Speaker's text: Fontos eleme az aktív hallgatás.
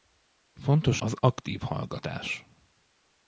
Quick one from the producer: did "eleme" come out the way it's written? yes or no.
no